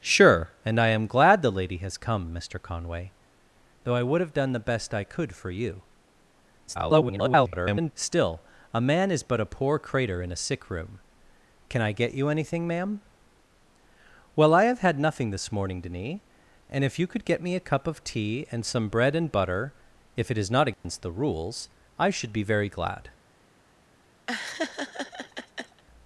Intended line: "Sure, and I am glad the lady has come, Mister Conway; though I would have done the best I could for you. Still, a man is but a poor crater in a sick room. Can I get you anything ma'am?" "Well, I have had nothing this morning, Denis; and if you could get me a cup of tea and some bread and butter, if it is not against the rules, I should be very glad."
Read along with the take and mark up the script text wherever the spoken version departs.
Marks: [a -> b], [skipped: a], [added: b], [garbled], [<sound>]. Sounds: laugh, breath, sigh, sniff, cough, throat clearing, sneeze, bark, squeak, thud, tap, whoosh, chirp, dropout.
"Sure, and I am glad the lady has come, Mister Conway; though I would have done the best I could for you. [garbled] Still, a man is but a poor crater in a sick room. Can I get you anything ma'am?" "Well, I have had nothing this morning, Denis; and if you could get me a cup of tea and some bread and butter, if it is not against [dropout] the rules, I should be very glad." [laugh]